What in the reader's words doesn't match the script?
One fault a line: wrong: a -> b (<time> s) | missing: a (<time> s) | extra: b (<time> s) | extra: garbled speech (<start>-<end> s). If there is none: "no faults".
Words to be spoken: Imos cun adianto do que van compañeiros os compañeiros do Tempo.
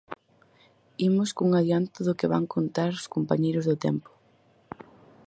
wrong: compañeiros -> contar (2.5 s)